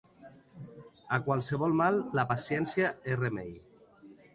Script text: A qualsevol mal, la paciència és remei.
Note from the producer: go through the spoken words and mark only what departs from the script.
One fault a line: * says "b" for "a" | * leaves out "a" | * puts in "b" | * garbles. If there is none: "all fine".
all fine